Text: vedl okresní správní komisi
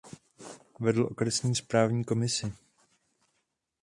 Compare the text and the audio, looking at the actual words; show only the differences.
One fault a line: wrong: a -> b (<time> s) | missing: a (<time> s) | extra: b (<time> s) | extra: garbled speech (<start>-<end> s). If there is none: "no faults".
no faults